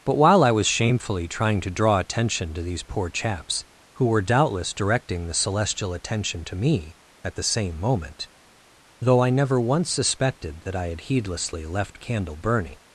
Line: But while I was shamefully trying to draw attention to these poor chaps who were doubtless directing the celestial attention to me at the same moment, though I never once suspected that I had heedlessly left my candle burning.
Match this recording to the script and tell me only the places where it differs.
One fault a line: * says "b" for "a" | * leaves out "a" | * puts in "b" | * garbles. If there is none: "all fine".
* leaves out "my"